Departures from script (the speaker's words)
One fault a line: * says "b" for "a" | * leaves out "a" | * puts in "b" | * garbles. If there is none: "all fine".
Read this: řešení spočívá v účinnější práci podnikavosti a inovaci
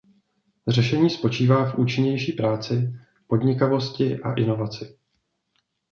all fine